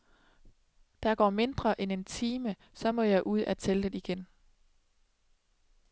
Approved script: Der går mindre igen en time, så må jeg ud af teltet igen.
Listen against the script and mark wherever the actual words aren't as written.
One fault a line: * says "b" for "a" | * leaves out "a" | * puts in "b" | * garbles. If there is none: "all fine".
* says "end" for "igen"